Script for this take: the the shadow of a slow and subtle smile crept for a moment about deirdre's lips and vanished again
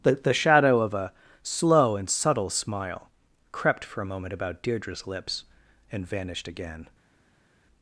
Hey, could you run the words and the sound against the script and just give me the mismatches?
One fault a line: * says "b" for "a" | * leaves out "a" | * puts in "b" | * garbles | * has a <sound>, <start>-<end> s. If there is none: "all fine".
all fine